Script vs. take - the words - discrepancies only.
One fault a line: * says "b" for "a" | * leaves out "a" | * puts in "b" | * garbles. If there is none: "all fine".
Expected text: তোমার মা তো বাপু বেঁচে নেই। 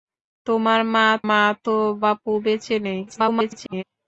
* puts in "মা"
* garbles